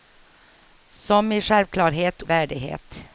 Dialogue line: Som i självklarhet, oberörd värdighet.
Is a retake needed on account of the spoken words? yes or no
yes